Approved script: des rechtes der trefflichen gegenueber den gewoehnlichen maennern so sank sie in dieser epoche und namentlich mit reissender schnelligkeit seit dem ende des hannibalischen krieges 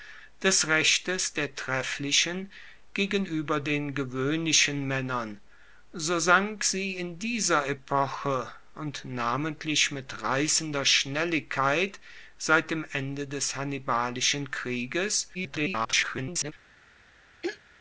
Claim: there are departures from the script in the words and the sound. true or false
true